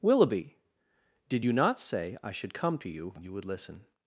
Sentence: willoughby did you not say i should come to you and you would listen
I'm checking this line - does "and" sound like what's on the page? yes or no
no